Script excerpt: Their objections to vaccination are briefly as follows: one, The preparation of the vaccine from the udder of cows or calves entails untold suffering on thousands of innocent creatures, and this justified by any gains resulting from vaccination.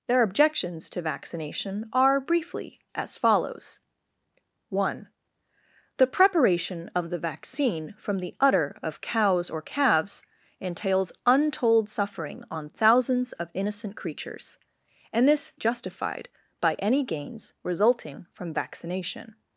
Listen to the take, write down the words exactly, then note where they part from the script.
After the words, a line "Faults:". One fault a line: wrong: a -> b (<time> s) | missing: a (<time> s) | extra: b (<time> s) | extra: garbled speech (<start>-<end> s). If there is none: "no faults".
Their objections to vaccination are briefly as follows: one, The preparation of the vaccine from the udder of cows or calves entails untold suffering on thousands of innocent creatures, and this justified by any gains resulting from vaccination.
Faults:
no faults